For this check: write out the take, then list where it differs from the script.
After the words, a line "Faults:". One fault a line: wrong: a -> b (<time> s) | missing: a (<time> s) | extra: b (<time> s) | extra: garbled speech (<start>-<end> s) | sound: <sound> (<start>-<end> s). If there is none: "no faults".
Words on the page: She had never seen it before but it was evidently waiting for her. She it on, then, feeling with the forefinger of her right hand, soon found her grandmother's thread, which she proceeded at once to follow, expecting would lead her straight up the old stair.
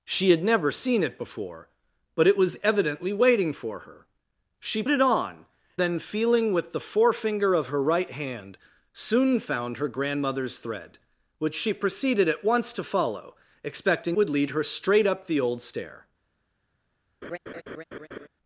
She had never seen it before but it was evidently waiting for her. She it on, then, feeling with the forefinger of her right hand, soon found her grandmother's thread, which she proceeded at once to follow, expecting would lead her straight up the old stair.
Faults:
sound: laugh (17.2-18.3 s)